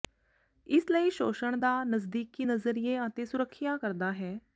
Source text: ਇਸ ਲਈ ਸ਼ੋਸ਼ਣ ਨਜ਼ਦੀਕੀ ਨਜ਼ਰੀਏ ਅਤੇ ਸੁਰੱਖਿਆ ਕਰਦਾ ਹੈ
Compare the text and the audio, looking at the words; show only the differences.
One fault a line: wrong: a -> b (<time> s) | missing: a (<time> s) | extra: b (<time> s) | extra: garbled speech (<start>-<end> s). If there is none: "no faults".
extra: ਦਾ (1.6 s)